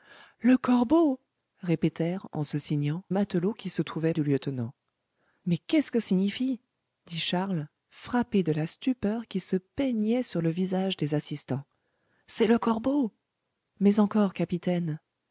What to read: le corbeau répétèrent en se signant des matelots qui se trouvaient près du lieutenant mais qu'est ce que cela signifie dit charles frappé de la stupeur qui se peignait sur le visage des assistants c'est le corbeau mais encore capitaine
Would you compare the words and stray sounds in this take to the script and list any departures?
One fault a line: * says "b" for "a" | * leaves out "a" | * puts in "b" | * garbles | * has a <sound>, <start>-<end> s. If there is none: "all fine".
* leaves out "des"
* leaves out "près"
* leaves out "cela"